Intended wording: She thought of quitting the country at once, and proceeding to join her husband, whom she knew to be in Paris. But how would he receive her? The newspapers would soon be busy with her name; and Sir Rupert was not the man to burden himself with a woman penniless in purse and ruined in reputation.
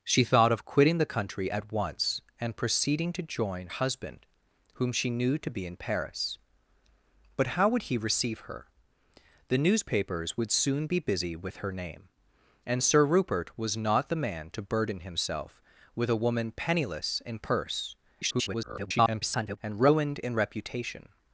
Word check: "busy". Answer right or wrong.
right